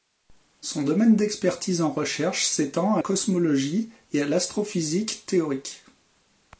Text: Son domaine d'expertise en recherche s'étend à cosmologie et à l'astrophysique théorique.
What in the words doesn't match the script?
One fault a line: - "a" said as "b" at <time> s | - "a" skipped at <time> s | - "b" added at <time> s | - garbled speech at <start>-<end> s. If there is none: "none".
none